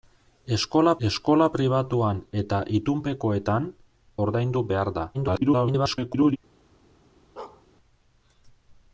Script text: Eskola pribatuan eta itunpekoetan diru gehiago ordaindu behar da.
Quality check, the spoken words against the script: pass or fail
fail